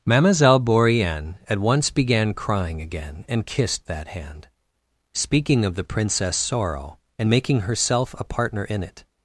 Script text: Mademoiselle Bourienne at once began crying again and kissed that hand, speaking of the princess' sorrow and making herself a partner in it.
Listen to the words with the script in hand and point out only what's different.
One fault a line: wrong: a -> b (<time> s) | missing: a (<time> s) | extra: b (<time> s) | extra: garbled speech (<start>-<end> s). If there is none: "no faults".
no faults